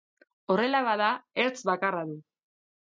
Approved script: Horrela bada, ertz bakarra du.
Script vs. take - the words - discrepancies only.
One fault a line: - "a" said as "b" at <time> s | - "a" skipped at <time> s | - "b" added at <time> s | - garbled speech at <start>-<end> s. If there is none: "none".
none